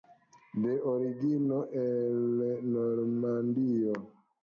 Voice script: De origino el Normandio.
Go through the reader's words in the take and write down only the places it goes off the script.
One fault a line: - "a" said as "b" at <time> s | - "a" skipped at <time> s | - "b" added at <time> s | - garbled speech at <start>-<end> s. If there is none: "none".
none